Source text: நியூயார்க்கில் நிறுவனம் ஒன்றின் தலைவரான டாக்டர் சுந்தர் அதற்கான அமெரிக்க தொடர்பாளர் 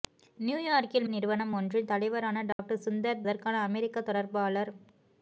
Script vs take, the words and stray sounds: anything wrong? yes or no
yes